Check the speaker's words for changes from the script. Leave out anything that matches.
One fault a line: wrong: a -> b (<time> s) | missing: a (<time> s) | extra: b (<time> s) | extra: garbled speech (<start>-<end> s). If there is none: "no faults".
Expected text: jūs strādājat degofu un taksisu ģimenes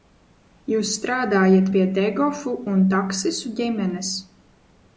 extra: pie (1.7 s)